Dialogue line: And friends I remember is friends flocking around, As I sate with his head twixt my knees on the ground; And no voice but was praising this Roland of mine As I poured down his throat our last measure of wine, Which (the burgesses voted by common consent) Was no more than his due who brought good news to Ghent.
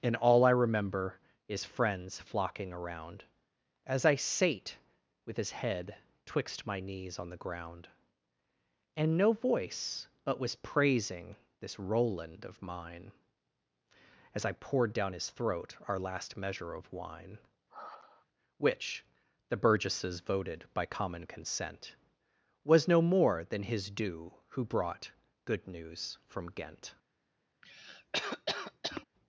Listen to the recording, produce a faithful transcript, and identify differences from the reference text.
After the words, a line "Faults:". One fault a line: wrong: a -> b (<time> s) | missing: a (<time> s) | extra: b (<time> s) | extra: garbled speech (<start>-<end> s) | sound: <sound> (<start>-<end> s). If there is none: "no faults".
And all I remember is friends flocking around, As I sate with his head twixt my knees on the ground; And no voice but was praising this Roland of mine As I poured down his throat our last measure of wine, Which (the burgesses voted by common consent) Was no more than his due who brought good news from Ghent.
Faults:
wrong: friends -> all (0.1 s)
sound: sigh (17.7-18.3 s)
wrong: to -> from (26.3 s)
sound: cough (27.6-29.0 s)